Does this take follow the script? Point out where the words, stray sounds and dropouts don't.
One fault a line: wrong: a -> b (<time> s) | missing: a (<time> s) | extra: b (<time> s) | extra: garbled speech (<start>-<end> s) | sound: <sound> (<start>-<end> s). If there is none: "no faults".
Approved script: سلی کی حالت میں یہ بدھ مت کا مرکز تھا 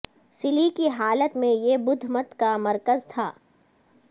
no faults